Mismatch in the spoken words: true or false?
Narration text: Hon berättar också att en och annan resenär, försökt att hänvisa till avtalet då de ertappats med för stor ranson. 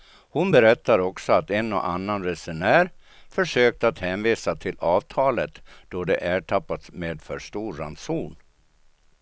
false